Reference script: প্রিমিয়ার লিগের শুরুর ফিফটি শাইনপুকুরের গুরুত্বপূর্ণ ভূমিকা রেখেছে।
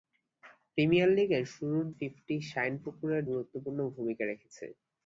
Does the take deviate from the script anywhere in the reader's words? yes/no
no